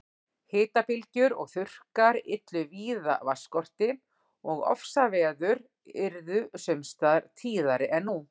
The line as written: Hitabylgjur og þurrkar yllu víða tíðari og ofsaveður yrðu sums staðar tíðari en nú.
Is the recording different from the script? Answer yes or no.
yes